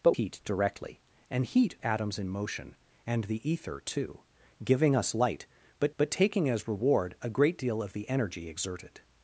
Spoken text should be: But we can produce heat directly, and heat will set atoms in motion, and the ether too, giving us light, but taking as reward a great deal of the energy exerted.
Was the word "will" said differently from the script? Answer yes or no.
yes